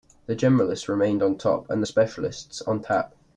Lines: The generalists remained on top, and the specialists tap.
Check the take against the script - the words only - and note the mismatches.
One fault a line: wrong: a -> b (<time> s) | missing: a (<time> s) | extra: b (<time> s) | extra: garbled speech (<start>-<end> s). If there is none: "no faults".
extra: on (2.6 s)